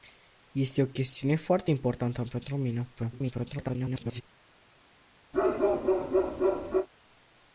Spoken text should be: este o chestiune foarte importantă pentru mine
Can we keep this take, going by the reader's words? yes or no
no